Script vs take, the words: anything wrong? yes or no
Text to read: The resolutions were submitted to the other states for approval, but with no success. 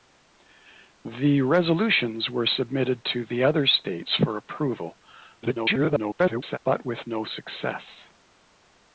yes